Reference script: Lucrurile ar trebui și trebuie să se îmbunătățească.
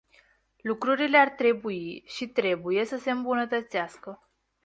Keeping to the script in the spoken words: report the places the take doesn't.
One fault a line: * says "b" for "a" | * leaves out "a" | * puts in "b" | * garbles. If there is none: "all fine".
all fine